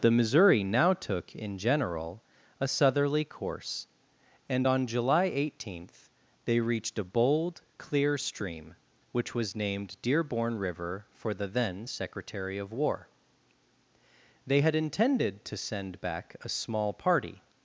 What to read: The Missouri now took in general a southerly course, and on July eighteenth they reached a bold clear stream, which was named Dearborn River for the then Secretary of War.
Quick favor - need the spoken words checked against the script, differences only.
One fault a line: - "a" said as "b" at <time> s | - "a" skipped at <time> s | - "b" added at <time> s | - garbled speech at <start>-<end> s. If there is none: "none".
- "They had intended to send back a small party" added at 14.4 s